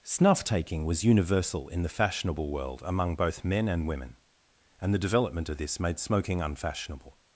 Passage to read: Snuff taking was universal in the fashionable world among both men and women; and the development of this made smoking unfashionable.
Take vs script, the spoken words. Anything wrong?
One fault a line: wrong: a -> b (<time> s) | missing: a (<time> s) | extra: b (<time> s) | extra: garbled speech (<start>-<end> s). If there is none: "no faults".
no faults